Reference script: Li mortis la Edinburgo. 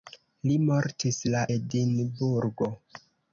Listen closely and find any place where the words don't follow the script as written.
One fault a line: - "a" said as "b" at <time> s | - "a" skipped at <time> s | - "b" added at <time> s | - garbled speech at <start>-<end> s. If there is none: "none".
none